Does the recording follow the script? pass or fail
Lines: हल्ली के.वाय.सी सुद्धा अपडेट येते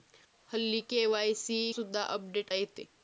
pass